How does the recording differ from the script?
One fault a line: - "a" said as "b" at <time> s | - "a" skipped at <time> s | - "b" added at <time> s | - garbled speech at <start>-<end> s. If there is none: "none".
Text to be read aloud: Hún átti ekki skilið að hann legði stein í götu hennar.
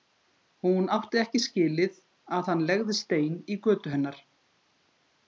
none